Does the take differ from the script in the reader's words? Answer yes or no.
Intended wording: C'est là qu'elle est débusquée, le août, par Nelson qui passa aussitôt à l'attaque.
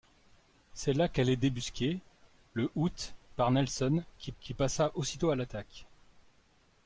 yes